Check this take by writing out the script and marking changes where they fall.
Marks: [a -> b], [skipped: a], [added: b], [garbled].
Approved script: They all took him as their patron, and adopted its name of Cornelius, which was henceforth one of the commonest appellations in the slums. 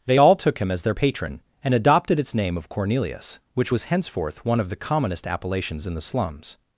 They all took him as their patron, and adopted its name of Cornelius, which was henceforth one of the commonest appellations in the slums.